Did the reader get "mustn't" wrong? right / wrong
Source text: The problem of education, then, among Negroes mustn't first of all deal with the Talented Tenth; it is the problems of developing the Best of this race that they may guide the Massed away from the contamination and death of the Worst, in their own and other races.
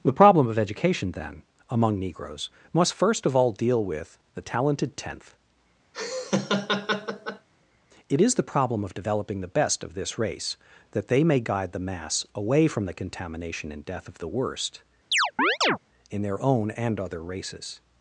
wrong